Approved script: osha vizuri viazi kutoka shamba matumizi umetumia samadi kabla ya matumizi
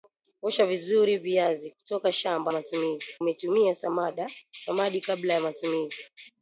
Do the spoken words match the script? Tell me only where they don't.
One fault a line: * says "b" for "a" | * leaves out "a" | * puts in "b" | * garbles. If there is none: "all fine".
all fine